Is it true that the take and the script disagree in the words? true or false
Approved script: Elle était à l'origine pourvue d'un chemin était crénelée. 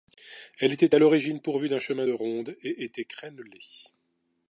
true